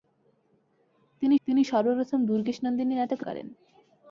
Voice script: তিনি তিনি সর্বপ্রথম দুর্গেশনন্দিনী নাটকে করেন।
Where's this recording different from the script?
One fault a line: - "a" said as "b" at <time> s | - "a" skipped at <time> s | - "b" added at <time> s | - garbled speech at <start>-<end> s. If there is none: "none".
none